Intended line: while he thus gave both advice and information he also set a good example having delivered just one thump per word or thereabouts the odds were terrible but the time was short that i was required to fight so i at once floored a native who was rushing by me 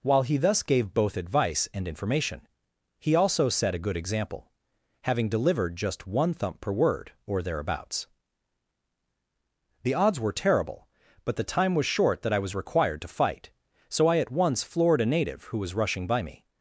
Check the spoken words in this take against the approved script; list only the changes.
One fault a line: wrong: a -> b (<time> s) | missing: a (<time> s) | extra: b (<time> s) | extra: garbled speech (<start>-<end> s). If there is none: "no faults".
no faults